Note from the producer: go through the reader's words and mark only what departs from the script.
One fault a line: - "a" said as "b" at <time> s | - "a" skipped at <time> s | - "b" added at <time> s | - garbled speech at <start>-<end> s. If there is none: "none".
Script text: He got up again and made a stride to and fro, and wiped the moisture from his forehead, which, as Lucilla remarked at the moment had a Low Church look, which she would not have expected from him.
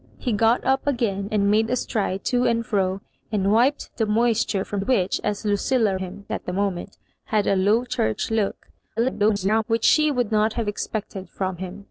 - "his forehead" skipped at 4.8 s
- "remarked" said as "him" at 6.0 s
- garbled speech at 9.0-9.6 s